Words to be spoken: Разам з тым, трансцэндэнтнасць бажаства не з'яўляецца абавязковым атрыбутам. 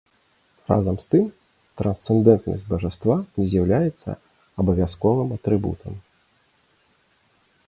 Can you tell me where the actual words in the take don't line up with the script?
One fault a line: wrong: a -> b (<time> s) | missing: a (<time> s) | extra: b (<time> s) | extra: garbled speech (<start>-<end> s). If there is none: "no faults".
no faults